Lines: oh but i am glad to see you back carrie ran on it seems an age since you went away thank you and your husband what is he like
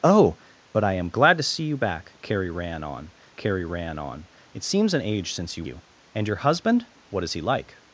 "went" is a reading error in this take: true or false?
true